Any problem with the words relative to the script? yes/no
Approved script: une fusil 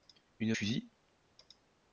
no